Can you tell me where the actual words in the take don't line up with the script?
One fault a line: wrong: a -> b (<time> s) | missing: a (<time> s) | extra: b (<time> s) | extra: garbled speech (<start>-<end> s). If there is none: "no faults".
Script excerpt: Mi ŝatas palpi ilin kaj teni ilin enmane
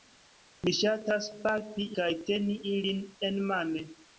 missing: ilin (1.9 s)